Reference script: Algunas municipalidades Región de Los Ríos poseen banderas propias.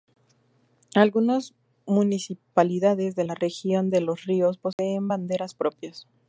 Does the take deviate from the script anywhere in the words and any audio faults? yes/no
yes